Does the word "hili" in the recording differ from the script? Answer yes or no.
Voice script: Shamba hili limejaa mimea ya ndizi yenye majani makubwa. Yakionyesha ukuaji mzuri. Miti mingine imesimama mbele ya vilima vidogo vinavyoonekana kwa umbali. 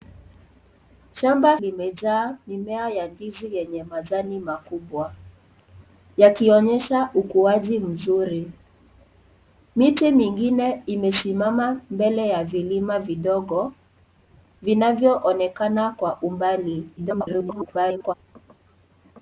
yes